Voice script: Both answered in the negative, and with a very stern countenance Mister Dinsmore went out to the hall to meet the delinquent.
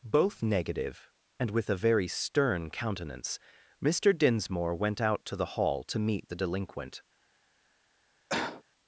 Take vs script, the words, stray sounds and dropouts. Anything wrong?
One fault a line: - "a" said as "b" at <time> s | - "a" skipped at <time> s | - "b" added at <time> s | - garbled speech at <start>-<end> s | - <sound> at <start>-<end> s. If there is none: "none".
- "answered in the" skipped at 0.4 s
- cough at 8.3-8.6 s